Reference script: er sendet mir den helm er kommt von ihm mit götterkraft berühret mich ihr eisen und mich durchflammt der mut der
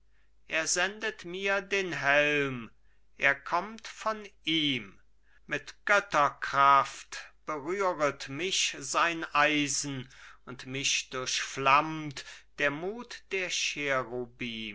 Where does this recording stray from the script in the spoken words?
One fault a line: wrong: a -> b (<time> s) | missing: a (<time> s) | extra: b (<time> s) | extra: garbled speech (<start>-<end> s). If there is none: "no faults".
wrong: ihr -> sein (8.8 s)